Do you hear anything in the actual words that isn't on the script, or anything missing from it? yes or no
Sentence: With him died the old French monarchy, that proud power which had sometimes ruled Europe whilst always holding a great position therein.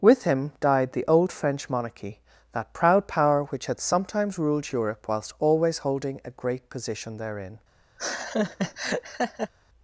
no